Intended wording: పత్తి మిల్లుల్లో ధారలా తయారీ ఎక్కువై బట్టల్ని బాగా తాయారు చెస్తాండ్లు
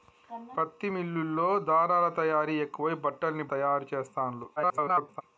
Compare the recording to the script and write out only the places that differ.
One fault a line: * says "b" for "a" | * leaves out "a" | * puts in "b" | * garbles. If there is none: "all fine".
* leaves out "బాగా"
* garbles